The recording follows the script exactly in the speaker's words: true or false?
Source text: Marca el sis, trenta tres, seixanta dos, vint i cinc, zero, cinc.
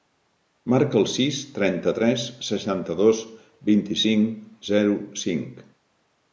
true